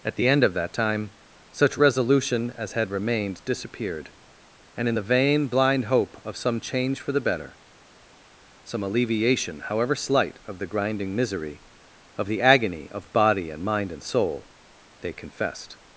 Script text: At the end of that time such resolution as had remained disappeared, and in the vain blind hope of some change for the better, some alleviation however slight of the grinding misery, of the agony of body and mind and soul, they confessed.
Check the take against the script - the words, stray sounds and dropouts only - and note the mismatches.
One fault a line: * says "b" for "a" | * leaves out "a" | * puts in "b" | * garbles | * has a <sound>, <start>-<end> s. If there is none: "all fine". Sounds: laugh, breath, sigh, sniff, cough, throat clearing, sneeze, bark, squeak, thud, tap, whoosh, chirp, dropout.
all fine